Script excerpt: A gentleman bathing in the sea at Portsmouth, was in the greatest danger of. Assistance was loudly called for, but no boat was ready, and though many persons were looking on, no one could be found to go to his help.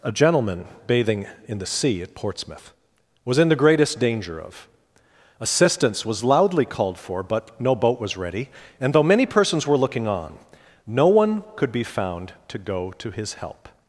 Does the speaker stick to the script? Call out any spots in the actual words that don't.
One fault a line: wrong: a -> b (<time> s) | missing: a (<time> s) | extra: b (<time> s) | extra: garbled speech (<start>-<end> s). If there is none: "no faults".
no faults